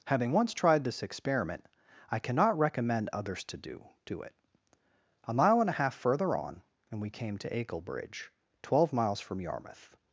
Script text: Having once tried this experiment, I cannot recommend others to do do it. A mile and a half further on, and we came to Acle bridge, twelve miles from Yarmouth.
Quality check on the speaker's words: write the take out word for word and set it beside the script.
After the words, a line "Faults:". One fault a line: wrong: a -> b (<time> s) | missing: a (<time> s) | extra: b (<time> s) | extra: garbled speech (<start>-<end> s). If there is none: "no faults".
Having once tried this experiment, I cannot recommend others to do do it. A mile and a half further on, and we came to Acle bridge, twelve miles from Yarmouth.
Faults:
no faults